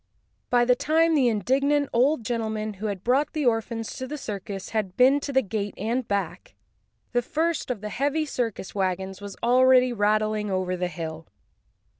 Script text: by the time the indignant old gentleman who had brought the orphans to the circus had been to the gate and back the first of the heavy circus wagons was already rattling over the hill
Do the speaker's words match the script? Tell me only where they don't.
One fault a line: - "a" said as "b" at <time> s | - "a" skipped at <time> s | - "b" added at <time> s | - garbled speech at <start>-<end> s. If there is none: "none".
none